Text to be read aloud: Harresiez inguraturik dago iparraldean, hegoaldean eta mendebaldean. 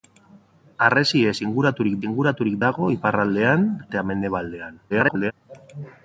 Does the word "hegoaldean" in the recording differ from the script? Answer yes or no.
yes